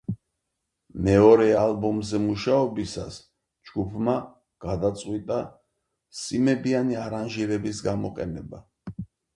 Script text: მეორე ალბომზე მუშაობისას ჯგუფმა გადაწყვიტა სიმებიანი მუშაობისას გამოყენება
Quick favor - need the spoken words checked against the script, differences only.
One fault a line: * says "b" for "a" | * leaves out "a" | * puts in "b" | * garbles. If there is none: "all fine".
* says "არანჟირების" for "მუშაობისას"